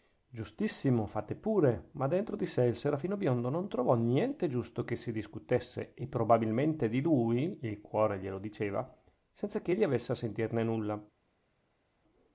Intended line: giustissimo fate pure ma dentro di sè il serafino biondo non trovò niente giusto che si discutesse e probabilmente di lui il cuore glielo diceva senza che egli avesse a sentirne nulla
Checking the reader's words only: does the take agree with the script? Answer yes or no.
yes